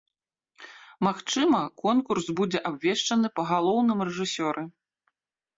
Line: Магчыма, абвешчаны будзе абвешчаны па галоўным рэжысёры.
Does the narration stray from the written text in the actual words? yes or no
yes